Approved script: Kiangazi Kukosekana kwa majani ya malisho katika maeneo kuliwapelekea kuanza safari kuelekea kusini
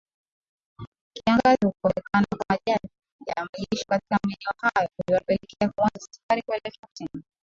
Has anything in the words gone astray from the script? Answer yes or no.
yes